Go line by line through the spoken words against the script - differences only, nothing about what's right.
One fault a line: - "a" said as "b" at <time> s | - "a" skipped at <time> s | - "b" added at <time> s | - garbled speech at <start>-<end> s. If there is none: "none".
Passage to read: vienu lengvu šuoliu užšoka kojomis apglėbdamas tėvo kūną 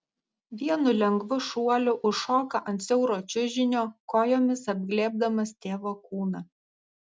- "ant siauro čiužinio" added at 2.7 s